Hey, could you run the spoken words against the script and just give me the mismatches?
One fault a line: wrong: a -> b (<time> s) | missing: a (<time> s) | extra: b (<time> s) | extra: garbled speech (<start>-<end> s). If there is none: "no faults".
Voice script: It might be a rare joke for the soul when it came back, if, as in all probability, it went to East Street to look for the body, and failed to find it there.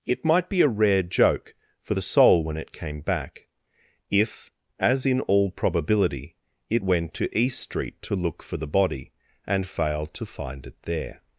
no faults